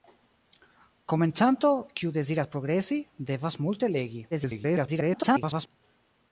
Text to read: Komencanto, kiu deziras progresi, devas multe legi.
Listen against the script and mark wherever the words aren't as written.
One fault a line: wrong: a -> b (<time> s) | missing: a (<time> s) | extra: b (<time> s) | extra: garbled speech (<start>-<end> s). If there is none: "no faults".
extra: garbled speech (4.3-5.7 s)